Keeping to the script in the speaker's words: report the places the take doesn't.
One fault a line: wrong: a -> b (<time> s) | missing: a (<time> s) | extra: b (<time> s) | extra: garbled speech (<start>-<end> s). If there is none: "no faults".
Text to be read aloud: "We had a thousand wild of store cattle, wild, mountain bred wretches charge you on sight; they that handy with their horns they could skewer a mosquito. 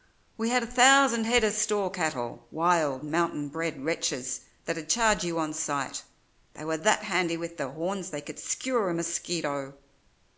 wrong: wild -> head (1.2 s)
extra: that'd (4.6 s)
extra: were (6.6 s)